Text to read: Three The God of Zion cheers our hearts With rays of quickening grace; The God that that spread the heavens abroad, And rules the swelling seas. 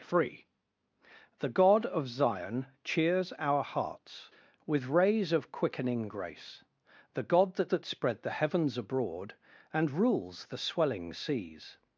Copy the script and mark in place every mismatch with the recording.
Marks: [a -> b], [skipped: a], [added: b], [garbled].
Three The God of Zion cheers our hearts With rays of quickening grace; The God that that spread the heavens abroad, And rules the swelling seas.